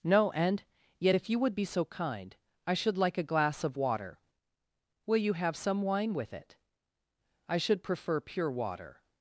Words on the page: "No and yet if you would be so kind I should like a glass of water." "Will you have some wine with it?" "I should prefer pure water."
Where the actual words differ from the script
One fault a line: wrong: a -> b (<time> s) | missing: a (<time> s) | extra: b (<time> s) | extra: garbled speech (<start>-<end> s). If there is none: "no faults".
no faults